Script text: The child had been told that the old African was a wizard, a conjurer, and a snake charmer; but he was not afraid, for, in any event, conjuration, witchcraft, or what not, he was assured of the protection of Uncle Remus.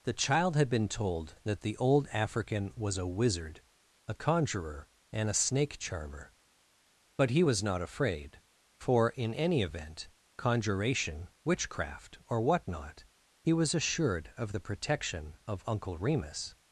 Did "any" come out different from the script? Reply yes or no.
no